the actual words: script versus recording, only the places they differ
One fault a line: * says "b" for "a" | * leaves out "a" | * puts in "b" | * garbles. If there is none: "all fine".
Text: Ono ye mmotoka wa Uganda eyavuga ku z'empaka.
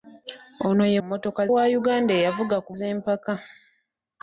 all fine